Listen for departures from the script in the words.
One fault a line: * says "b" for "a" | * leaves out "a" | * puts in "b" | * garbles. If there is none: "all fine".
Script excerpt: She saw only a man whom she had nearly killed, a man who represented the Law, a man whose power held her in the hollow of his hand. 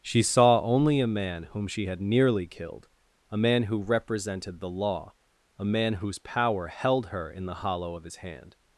all fine